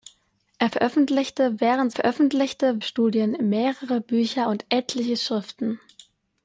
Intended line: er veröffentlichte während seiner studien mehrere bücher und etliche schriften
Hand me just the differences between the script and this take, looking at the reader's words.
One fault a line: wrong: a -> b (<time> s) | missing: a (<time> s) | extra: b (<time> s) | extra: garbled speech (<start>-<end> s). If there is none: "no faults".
wrong: seiner -> veröffentlichte (1.9 s)